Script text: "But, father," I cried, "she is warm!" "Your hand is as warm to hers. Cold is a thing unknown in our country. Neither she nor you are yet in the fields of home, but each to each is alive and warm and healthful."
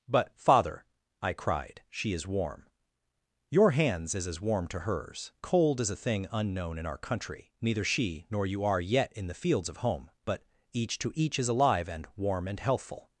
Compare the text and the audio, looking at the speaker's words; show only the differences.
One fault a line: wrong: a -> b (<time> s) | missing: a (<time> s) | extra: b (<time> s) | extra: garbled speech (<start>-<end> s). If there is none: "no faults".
wrong: hand -> hands (3.7 s)